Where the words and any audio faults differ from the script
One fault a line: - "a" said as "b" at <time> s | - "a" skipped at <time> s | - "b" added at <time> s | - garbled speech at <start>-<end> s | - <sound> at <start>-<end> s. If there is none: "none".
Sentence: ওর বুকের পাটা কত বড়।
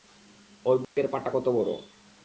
- dropout at 0.8-1.0 s